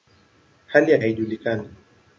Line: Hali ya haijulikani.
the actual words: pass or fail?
pass